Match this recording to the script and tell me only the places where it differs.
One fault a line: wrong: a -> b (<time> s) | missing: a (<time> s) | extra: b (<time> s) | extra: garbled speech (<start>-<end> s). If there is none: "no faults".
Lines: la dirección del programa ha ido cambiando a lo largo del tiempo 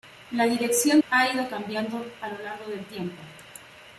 missing: del programa (1.0 s)